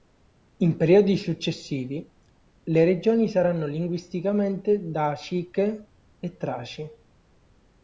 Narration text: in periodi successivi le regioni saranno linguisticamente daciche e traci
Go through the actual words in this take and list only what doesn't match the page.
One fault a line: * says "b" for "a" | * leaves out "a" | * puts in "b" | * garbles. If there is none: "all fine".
all fine